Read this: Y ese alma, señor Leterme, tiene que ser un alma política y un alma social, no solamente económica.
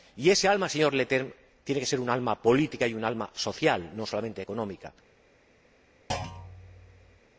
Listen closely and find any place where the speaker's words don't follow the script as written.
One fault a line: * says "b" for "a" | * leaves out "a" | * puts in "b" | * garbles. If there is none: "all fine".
all fine